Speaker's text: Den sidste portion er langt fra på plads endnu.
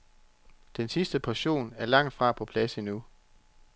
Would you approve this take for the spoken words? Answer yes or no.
yes